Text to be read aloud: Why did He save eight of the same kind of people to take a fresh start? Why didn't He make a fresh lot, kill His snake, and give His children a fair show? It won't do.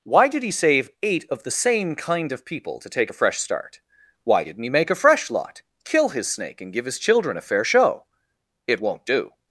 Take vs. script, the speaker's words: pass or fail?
pass